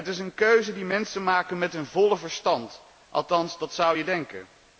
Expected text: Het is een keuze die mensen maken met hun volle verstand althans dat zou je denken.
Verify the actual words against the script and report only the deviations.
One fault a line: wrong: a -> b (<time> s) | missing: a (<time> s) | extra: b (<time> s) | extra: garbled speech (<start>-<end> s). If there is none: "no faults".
no faults